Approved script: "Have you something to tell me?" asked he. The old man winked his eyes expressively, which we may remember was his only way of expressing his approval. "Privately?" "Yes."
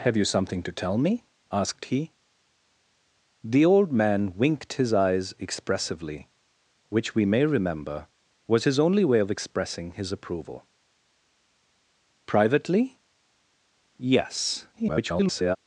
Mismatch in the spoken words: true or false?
true